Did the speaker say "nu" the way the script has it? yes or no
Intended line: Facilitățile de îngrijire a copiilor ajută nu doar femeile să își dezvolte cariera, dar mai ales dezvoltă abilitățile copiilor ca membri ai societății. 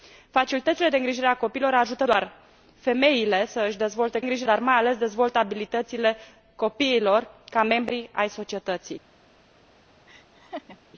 no